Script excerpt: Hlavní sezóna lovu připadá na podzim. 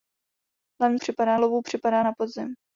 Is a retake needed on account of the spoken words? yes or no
yes